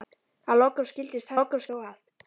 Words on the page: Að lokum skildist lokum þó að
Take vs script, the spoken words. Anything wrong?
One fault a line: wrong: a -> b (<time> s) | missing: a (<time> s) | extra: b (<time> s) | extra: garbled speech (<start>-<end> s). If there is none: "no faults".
no faults